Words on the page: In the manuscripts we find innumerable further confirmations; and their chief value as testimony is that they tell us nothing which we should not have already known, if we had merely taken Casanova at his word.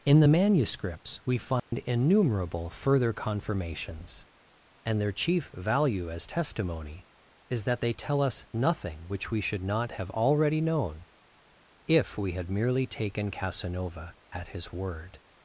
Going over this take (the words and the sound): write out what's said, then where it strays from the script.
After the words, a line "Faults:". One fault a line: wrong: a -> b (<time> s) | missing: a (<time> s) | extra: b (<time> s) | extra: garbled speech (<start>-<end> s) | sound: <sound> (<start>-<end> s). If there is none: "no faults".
In the manuscripts we find innumerable further confirmations; and their chief value as testimony is that they tell us nothing which we should not have already known, if we had merely taken Casanova at his word.
Faults:
sound: dropout (1.6-1.7 s)